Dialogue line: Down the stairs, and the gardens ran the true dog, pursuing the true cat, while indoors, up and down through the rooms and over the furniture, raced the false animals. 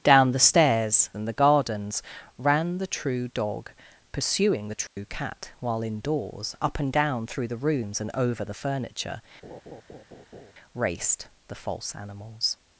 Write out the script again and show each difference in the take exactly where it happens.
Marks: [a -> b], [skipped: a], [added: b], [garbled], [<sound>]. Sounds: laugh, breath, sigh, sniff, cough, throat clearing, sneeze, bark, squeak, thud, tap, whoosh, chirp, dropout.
Down the stairs, and the gardens ran the true dog, pursuing the true [dropout] cat, while indoors, up and down through the rooms and over the furniture, [laugh] raced the false animals.